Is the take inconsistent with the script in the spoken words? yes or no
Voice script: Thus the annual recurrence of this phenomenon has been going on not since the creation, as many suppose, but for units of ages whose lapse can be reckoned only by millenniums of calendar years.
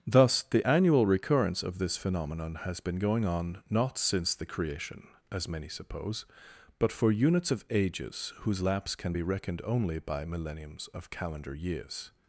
no